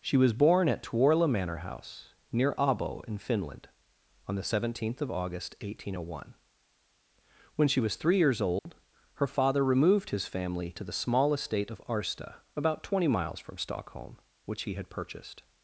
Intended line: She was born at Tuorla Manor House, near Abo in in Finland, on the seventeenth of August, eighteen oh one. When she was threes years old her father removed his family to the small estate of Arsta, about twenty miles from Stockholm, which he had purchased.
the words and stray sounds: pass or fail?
fail